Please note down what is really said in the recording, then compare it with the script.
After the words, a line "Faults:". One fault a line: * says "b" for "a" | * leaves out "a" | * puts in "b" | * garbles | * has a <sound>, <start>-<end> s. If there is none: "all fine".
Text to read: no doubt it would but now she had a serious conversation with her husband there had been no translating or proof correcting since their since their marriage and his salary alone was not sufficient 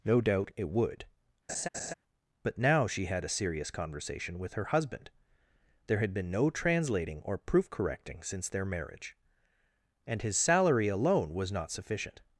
no doubt it would but now she had a serious conversation with her husband there had been no translating or proof correcting since their marriage and his salary alone was not sufficient
Faults:
* has a laugh, 1.5-1.9 s
* leaves out "since their"